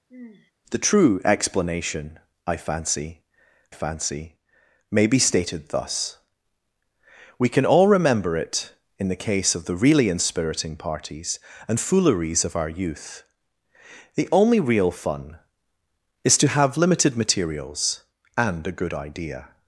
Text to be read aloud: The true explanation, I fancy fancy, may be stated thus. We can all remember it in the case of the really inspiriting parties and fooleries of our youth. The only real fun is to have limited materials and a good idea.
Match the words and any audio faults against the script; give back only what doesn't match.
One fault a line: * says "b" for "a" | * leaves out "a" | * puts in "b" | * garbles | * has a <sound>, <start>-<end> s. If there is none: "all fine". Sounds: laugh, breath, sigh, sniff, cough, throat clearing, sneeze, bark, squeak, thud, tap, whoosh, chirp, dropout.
* has a sigh, 0.1-0.5 s